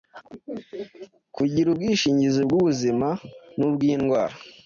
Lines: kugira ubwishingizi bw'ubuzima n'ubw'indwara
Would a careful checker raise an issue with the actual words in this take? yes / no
no